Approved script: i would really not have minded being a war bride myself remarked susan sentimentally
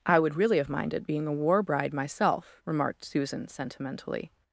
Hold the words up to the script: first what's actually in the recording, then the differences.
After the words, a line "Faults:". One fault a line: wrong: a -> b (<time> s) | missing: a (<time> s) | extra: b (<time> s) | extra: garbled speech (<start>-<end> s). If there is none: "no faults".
i would really have minded being a war bride myself remarked susan sentimentally
Faults:
missing: not (0.6 s)